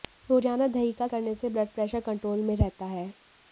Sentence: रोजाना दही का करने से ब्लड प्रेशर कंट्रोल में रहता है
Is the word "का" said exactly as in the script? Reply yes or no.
yes